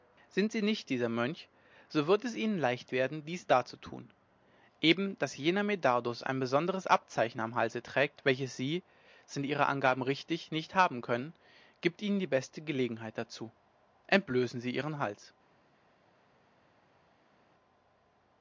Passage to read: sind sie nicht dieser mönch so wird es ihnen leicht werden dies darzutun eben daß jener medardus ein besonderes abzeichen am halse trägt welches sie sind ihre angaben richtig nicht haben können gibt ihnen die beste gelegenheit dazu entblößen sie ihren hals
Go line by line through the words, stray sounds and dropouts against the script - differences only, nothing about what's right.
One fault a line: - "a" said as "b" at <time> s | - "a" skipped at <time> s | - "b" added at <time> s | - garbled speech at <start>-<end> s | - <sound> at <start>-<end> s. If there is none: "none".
none